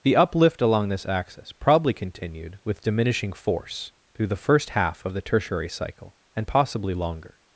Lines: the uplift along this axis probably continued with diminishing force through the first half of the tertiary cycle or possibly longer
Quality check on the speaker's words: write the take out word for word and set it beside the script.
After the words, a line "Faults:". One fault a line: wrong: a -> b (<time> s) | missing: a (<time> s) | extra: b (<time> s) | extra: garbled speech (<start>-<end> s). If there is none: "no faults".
the uplift along this axis probably continued with diminishing force through the first half of the tertiary cycle and possibly longer
Faults:
wrong: or -> and (6.3 s)